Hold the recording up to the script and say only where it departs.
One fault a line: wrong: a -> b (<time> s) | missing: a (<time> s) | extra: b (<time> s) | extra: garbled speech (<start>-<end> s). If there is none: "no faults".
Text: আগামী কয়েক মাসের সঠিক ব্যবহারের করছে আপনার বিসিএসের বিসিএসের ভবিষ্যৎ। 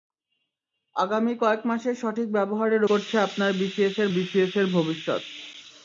no faults